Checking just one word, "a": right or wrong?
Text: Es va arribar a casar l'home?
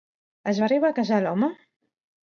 right